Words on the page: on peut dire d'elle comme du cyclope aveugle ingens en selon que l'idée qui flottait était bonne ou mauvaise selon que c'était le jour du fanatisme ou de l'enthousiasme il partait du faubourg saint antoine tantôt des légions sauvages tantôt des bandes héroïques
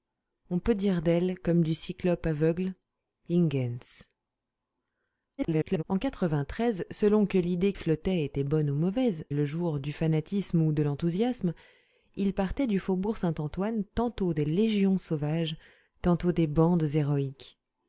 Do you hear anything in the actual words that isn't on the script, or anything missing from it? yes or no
yes